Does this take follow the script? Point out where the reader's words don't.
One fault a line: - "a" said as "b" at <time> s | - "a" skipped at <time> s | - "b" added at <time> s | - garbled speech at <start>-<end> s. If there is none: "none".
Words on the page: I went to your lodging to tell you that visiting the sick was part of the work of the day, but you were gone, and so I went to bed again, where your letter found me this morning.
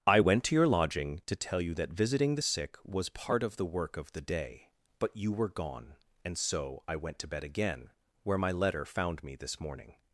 - "your" said as "my" at 8.4 s